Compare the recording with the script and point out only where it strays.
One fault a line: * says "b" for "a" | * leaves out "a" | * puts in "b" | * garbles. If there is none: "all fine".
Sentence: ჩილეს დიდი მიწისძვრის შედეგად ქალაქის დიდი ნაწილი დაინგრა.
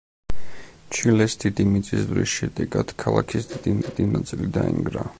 * puts in "დიდი"